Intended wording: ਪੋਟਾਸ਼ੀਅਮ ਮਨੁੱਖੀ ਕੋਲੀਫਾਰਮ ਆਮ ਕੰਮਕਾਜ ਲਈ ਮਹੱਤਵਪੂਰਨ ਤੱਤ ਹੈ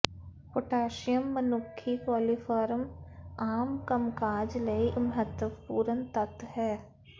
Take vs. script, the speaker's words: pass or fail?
pass